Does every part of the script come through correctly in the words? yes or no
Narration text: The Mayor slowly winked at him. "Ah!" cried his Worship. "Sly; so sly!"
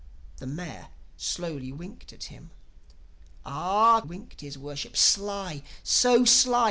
no